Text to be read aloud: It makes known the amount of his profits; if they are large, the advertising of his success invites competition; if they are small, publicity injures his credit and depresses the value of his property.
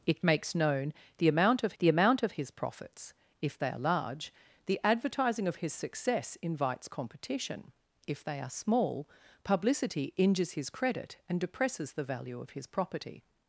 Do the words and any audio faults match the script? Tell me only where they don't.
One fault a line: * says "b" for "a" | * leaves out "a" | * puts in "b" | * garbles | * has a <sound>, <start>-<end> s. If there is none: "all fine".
* puts in "the amount of"